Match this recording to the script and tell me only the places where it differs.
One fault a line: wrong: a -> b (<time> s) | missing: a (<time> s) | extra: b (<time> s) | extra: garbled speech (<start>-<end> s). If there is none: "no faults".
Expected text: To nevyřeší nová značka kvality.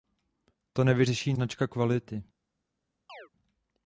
missing: nová (1.3 s)